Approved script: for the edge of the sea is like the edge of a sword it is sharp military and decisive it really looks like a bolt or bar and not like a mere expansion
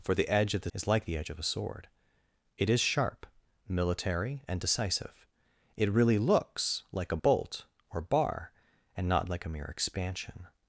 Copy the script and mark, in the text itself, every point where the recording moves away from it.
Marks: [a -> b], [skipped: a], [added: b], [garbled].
for the edge of the [skipped: sea] is like the edge of a sword it is sharp military and decisive it really looks like a bolt or bar and not like a mere expansion